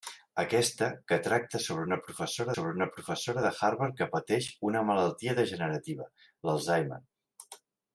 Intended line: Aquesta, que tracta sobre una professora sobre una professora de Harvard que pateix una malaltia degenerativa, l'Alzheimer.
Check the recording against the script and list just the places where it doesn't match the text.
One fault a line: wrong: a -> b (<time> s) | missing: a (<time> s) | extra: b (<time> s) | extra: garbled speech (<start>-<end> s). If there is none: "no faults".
no faults